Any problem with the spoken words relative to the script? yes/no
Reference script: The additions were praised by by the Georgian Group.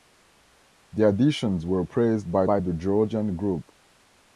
no